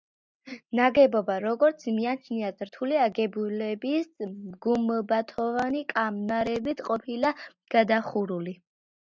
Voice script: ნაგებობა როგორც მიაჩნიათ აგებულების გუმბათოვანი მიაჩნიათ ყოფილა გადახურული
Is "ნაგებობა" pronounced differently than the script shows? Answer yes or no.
no